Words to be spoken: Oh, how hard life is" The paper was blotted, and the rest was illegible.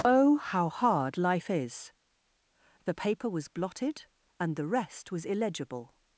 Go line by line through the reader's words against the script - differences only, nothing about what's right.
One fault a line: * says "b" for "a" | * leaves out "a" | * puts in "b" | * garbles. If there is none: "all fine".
all fine